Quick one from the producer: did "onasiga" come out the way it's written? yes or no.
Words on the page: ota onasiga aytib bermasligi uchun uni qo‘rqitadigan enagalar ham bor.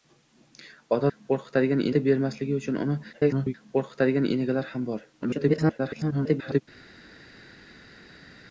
no